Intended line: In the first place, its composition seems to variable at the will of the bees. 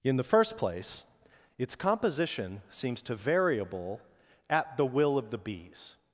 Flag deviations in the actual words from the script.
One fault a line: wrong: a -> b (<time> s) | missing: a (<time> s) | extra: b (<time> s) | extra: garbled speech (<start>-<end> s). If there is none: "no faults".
no faults